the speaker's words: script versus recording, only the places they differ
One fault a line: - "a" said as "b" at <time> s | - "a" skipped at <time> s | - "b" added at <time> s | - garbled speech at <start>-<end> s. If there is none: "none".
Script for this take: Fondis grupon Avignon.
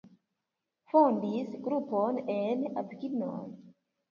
- "en" added at 2.4 s